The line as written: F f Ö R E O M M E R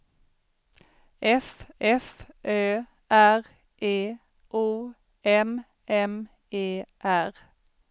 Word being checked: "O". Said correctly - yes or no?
yes